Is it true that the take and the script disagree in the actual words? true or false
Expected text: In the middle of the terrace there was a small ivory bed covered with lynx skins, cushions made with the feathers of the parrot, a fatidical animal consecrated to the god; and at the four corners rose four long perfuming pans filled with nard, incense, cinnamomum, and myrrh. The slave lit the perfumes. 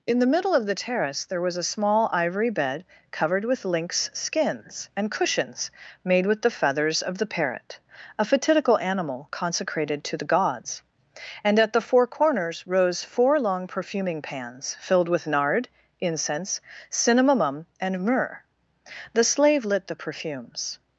true